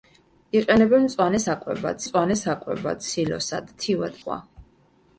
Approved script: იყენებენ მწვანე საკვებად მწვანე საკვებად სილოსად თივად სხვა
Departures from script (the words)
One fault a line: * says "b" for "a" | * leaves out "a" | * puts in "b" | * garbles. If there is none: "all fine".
all fine